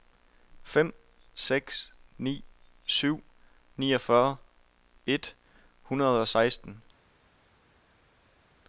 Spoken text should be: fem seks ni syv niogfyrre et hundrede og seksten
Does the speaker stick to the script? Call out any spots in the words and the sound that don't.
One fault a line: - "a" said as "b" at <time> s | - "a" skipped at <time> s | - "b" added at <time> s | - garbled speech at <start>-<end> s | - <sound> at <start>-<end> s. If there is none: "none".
none